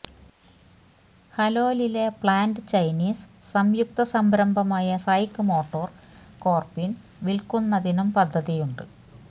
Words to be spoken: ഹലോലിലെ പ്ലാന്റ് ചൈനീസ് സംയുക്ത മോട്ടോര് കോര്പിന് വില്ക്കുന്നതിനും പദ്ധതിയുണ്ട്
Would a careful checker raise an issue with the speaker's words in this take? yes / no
yes